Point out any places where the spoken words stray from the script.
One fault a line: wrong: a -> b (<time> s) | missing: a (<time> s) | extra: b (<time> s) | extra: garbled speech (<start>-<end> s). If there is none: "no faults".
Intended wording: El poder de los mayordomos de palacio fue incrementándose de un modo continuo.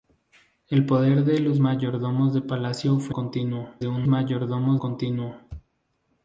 wrong: incrementándose -> continuo (3.1 s)
wrong: modo -> mayordomos (4.1 s)